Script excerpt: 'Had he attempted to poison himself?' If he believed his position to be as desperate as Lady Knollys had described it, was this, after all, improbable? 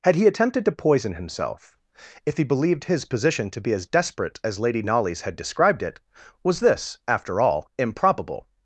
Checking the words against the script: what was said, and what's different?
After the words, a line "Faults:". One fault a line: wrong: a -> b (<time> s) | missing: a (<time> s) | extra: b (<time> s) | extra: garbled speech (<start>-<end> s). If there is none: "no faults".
'Had he attempted to poison himself?' If he believed his position to be as desperate as Lady Knollys had described it, was this, after all, improbable?
Faults:
no faults